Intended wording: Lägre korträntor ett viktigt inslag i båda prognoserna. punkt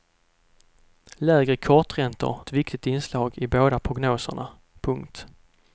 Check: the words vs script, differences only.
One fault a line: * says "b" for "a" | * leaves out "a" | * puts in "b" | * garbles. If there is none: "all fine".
all fine